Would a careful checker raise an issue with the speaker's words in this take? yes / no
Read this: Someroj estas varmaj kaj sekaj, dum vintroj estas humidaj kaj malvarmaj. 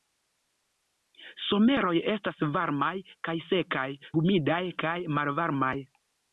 yes